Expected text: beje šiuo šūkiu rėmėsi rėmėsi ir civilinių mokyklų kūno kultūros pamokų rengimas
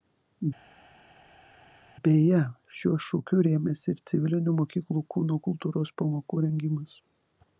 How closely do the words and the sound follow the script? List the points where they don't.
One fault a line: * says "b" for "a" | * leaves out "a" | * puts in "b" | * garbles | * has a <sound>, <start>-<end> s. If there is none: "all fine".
* leaves out "rėmėsi"